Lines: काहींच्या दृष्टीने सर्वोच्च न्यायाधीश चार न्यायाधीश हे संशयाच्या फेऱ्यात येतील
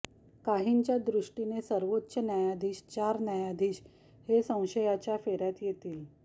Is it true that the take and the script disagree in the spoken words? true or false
false